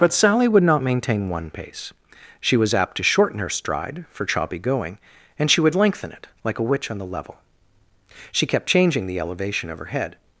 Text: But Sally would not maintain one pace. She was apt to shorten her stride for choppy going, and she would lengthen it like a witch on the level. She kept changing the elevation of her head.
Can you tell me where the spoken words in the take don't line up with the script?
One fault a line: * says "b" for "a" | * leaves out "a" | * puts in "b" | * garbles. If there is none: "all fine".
all fine